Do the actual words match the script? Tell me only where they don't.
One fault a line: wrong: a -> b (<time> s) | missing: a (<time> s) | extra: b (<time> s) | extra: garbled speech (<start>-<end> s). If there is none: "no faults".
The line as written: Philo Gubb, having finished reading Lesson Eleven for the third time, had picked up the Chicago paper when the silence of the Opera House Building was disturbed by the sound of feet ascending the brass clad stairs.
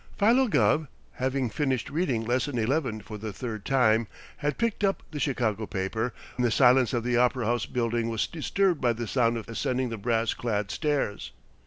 missing: when (6.1 s)
missing: feet (9.4 s)